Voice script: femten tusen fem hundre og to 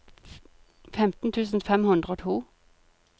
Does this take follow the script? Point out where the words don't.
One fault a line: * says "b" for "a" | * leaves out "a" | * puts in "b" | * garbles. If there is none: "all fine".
all fine